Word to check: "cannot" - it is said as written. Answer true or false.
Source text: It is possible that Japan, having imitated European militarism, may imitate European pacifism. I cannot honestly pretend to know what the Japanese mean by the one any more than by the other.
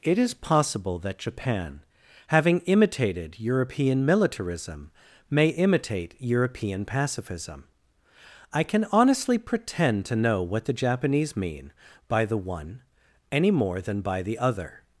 false